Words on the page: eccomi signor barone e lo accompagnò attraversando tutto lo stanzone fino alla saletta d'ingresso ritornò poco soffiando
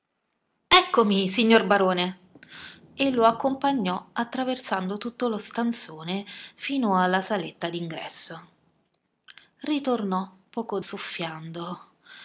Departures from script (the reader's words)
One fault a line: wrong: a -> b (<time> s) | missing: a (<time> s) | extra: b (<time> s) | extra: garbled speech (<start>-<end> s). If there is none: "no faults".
no faults